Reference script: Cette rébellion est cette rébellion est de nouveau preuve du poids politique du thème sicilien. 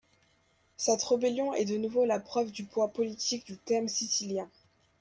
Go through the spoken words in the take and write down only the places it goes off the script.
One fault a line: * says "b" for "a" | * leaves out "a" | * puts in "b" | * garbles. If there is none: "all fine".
* leaves out "cette rébellion est"
* puts in "la"